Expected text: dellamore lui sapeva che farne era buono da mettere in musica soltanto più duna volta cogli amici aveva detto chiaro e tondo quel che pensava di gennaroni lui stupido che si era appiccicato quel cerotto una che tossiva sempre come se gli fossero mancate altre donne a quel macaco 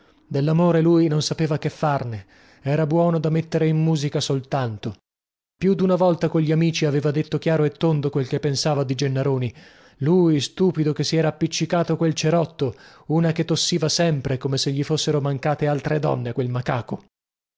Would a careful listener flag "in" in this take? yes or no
no